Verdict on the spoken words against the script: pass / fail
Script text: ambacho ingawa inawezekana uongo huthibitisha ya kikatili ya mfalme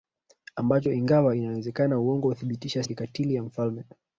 pass